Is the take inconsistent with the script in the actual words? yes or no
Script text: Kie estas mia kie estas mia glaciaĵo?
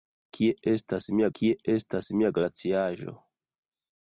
no